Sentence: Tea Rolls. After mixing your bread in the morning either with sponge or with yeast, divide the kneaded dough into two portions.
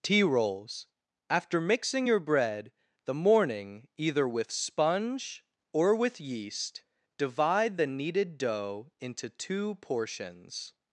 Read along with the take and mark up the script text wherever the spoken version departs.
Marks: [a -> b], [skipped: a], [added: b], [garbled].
Tea Rolls. After mixing your bread [skipped: in] the morning either with sponge or with yeast, divide the kneaded dough into two portions.